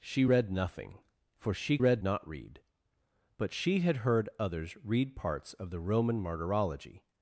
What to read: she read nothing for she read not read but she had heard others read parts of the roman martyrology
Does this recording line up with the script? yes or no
yes